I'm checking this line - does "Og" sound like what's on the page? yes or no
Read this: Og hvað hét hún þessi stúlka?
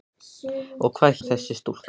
yes